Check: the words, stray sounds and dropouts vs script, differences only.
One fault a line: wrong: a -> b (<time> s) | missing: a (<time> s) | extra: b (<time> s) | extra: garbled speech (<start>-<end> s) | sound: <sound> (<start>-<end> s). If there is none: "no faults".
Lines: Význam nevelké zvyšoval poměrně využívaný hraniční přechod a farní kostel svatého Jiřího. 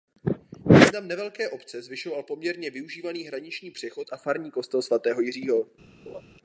extra: obce (1.5 s)
sound: laugh (6.1-6.2 s)